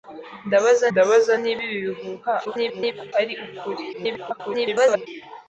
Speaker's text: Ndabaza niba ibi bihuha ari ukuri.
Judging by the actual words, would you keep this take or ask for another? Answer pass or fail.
fail